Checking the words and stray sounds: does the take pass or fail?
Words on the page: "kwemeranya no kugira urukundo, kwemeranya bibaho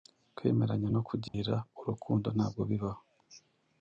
fail